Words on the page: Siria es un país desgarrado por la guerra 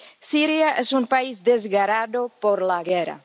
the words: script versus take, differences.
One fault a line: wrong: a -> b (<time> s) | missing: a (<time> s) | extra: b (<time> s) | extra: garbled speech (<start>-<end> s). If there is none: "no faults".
no faults